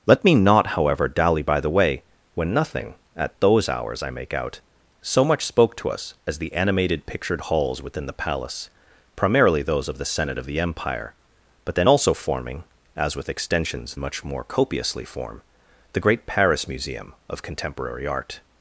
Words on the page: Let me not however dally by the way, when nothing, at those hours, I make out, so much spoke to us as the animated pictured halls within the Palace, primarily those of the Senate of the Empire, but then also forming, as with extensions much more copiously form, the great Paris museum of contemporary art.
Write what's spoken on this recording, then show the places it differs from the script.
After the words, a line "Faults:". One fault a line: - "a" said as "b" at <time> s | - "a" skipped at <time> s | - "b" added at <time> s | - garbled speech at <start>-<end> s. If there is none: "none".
Let me not however dally by the way, when nothing, at those hours, I make out, so much spoke to us as the animated pictured halls within the Palace, primarily those of the Senate of the Empire, but then also forming, as with extensions much more copiously form, the great Paris museum of contemporary art.
Faults:
none